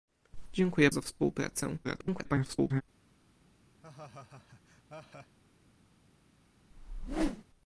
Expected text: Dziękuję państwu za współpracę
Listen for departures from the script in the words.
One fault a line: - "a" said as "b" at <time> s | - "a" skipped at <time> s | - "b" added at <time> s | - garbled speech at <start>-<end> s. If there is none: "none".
- "państwu" skipped at 0.9 s
- garbled speech at 1.8-2.8 s